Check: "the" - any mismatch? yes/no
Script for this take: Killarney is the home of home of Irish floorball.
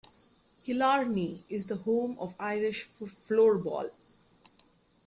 no